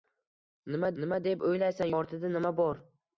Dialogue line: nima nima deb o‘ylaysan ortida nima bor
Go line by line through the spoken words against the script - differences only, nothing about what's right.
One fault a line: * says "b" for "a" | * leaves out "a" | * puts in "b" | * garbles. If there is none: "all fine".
all fine